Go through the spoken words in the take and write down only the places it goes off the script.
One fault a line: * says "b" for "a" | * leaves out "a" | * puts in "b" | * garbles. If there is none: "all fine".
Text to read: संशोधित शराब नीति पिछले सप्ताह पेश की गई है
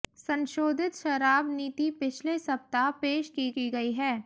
* puts in "की"